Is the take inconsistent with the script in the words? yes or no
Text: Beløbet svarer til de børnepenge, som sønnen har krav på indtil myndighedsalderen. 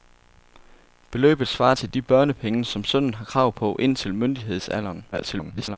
yes